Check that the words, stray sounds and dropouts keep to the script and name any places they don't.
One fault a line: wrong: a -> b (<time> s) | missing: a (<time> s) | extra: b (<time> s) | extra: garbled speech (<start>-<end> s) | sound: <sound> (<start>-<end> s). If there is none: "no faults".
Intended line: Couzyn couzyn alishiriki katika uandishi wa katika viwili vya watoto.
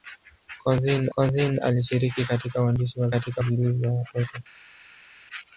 no faults